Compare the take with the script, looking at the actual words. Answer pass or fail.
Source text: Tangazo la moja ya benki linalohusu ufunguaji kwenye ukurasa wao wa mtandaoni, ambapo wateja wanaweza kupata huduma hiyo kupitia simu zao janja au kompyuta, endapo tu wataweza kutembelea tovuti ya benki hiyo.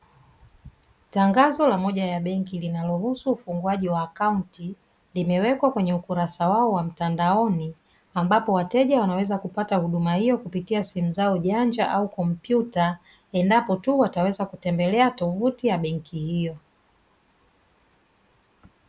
fail